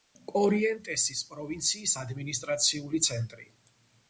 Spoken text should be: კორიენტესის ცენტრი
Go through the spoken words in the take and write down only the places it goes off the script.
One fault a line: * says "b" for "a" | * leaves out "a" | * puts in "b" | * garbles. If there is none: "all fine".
* puts in "პროვინციის ადმინისტრაციული"